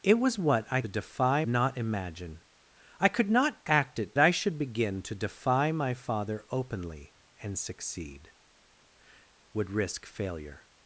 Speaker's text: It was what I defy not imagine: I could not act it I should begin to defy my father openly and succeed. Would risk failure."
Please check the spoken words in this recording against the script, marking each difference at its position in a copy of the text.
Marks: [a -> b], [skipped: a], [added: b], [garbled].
It was what I defy not imagine: I could not act it I should begin to defy my father openly and succeed. Would risk failure."